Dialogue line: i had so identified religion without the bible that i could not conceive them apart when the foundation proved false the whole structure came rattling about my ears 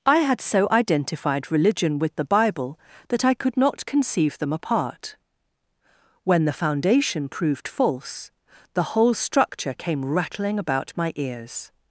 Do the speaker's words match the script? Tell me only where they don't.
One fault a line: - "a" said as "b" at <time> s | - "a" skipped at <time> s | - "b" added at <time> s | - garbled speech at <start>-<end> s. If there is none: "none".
- "without" said as "with" at 2.0 s